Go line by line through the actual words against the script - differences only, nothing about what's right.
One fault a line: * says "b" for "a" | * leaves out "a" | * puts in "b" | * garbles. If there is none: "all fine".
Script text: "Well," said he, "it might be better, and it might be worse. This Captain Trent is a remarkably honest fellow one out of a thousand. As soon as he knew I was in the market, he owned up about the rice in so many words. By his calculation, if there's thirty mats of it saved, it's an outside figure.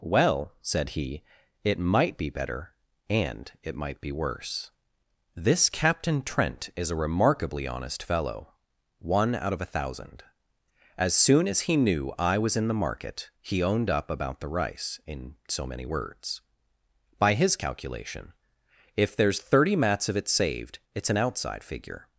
all fine